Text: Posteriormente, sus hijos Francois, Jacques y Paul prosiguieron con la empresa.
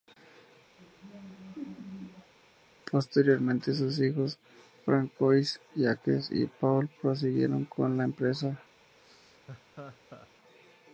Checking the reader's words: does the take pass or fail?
pass